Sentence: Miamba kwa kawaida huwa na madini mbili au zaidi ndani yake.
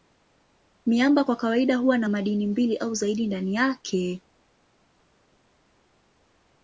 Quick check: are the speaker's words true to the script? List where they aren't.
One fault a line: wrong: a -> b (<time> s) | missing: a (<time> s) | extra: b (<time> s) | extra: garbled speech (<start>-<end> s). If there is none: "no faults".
no faults